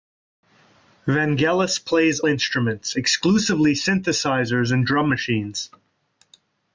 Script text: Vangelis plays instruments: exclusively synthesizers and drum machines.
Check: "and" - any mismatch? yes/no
no